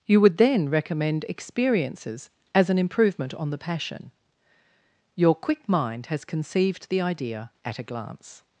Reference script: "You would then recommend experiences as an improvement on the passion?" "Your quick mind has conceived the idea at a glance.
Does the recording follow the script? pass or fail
pass